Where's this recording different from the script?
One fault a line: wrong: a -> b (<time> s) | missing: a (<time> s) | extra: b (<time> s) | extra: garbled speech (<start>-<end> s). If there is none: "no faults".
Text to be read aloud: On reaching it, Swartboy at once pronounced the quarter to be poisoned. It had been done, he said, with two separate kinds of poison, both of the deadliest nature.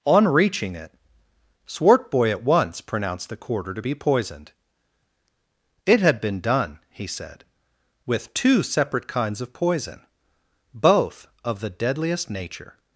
no faults